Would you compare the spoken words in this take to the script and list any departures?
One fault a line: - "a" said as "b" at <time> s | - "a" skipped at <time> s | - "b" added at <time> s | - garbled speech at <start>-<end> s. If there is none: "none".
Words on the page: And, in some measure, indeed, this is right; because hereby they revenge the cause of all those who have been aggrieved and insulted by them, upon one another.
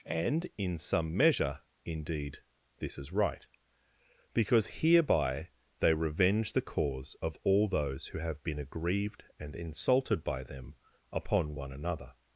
none